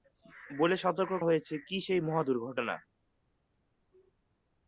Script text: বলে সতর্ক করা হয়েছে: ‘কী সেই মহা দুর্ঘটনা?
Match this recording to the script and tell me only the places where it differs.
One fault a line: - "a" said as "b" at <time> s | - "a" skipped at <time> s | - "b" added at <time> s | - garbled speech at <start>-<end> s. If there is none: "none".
- "করা" skipped at 1.1 s